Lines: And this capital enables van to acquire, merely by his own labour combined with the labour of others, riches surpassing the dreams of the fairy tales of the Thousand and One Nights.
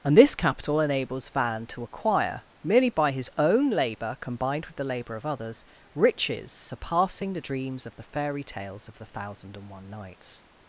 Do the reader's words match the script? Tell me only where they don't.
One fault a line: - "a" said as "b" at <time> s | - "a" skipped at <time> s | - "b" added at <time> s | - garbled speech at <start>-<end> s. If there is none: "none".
none